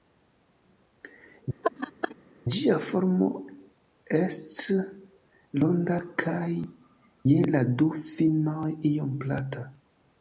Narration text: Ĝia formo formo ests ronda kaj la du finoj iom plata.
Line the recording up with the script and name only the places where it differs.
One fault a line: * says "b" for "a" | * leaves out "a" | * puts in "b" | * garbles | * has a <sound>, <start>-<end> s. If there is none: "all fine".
* has a laugh, 1.6-2.2 s
* leaves out "formo"
* puts in "je"